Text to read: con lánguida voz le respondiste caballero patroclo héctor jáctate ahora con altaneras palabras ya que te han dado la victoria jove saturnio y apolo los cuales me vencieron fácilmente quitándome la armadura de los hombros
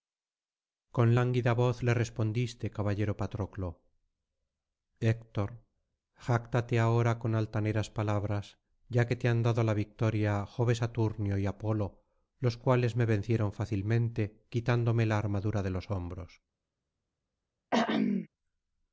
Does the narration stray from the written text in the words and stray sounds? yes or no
yes